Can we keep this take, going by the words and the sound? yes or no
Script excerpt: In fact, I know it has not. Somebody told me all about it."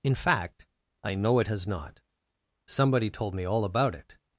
yes